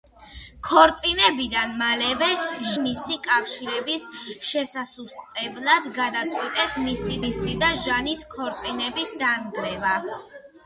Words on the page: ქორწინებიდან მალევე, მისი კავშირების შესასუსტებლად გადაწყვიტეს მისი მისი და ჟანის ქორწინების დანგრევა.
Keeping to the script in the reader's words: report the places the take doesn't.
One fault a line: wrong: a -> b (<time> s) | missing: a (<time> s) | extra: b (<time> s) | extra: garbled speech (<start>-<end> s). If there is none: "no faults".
no faults